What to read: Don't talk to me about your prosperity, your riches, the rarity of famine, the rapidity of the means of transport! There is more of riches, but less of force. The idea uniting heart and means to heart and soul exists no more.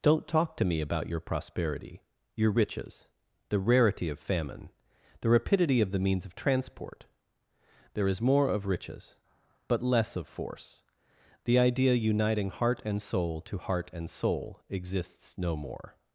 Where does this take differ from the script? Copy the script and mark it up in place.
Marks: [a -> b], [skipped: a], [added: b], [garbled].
Don't talk to me about your prosperity, your riches, the rarity of famine, the rapidity of the means of transport! There is more of riches, but less of force. The idea uniting heart and [means -> soul] to heart and soul exists no more.